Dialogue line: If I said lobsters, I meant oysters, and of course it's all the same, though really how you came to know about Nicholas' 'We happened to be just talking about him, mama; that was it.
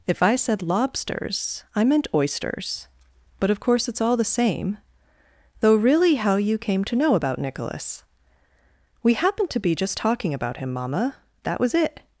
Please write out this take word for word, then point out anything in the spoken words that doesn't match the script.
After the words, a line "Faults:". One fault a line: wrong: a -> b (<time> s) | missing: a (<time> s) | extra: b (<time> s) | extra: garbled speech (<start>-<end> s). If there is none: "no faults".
If I said lobsters, I meant oysters, but of course it's all the same, though really how you came to know about Nicholas' 'We happened to be just talking about him, mama; that was it.
Faults:
wrong: and -> but (3.4 s)